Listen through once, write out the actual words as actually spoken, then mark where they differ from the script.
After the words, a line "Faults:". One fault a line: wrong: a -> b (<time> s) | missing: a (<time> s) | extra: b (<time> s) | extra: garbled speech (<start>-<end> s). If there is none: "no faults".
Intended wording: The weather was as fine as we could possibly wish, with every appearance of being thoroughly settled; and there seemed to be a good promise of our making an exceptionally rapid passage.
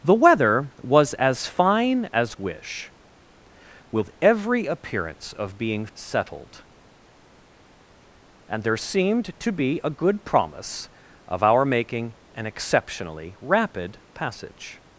The weather was as fine as wish, with every appearance of being settled; and there seemed to be a good promise of our making an exceptionally rapid passage.
Faults:
missing: we could possibly (2.4 s)
missing: thoroughly (5.9 s)